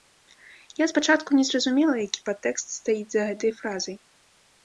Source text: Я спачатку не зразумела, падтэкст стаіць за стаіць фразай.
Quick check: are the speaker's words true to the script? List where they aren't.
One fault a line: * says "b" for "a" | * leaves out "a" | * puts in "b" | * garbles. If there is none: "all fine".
* puts in "які"
* says "гэтай" for "стаіць"